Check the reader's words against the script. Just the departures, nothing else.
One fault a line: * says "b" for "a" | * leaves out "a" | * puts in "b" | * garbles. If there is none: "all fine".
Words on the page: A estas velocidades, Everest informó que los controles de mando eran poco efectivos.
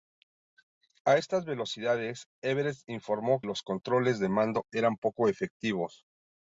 * leaves out "que"